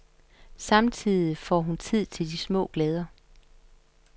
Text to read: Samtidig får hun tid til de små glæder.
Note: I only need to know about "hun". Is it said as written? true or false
true